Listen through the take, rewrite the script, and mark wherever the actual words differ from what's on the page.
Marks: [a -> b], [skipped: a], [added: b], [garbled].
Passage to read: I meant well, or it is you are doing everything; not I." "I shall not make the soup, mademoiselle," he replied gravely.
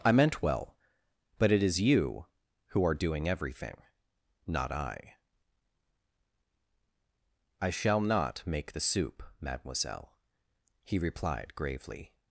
I meant well, [or -> but] it is you [added: who] are doing everything; not I." "I shall not make the soup, mademoiselle," he replied gravely.